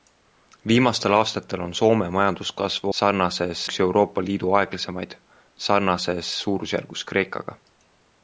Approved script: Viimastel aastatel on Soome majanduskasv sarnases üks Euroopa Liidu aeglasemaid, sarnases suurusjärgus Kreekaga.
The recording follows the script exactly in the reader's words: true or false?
true